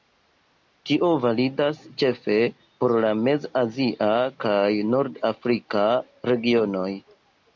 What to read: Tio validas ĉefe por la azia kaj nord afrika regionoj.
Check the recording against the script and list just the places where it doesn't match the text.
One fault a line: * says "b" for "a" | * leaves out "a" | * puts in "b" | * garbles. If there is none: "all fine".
* puts in "mez"